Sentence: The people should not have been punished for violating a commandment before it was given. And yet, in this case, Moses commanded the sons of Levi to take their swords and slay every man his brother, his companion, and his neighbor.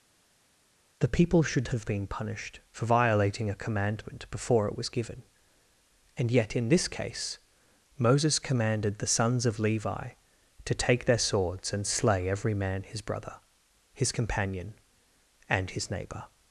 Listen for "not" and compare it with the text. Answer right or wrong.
wrong